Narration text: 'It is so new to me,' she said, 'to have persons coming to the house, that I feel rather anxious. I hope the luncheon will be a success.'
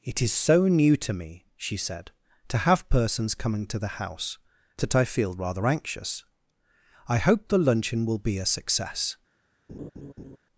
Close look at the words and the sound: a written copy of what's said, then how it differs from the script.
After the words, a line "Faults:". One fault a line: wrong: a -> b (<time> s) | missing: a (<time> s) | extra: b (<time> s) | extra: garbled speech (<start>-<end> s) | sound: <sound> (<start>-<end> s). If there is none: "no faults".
'It is so new to me,' she said, 'to have persons coming to the house, that I feel rather anxious. I hope the luncheon will be a success.'
Faults:
sound: laugh (9.7-10.4 s)